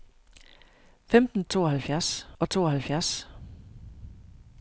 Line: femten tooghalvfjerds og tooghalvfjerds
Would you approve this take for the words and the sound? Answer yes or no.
yes